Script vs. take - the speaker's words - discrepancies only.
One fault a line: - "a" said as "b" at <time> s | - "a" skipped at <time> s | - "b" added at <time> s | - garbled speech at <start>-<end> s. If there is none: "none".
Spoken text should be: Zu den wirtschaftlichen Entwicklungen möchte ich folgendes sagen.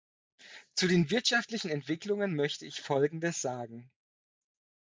none